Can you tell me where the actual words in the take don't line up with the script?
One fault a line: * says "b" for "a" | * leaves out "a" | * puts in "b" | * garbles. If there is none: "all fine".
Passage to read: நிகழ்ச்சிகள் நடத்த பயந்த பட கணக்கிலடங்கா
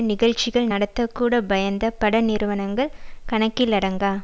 * puts in "கூட"
* puts in "நிறுவனங்கள்"